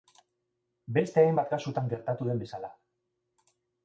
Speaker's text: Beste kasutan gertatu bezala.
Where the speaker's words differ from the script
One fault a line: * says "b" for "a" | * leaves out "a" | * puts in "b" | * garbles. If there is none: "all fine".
* puts in "hainbat"
* puts in "den"